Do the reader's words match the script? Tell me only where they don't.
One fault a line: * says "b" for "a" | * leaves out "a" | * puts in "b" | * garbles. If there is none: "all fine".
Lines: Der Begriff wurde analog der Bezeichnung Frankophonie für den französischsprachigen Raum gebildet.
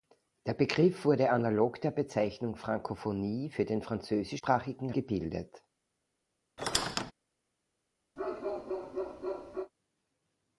* leaves out "Raum"